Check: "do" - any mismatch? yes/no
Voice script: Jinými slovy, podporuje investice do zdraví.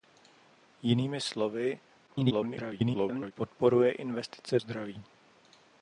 yes